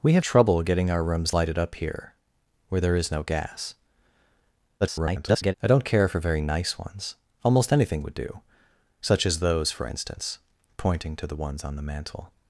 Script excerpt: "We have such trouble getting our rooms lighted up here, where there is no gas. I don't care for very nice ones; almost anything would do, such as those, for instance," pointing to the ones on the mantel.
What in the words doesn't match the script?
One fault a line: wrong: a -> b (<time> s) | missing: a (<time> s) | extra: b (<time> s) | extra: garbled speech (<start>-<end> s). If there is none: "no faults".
missing: such (0.2 s)
extra: garbled speech (4.8-5.5 s)